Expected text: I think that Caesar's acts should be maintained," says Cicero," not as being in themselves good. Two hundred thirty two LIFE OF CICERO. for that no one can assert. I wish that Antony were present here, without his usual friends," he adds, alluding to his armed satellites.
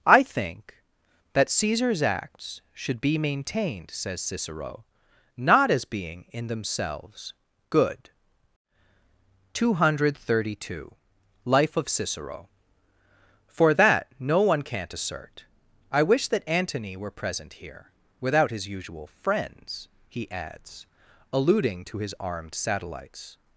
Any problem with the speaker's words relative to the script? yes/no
yes